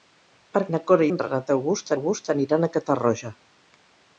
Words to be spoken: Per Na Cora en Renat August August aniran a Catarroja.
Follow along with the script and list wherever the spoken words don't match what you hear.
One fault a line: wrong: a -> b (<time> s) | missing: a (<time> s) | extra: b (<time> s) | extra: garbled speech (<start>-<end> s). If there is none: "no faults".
no faults